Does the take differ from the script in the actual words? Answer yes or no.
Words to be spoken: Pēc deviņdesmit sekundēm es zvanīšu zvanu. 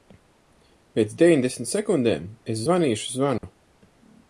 no